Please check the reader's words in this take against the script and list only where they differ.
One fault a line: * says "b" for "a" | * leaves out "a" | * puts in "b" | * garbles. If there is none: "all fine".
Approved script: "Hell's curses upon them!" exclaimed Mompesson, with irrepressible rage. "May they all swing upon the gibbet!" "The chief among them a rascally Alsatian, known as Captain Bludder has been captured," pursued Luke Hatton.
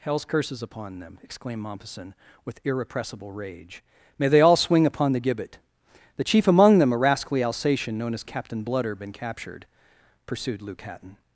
* leaves out "has"